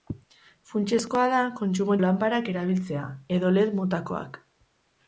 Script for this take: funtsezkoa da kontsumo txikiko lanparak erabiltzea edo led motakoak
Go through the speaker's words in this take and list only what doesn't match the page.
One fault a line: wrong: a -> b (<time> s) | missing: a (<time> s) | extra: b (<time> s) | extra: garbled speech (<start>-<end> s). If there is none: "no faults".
missing: txikiko (2.0 s)